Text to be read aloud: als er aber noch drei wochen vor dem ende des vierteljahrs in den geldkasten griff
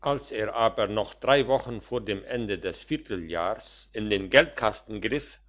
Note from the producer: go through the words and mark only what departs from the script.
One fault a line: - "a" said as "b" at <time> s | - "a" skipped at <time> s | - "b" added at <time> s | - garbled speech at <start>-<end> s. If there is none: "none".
none